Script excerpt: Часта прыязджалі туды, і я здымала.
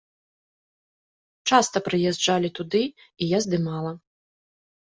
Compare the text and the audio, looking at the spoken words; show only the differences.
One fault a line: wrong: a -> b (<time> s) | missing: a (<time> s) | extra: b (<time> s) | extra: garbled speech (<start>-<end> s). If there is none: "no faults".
no faults